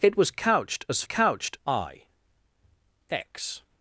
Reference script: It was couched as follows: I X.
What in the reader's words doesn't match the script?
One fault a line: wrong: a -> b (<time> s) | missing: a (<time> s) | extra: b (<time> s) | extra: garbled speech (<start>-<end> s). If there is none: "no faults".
wrong: follows -> couched (1.0 s)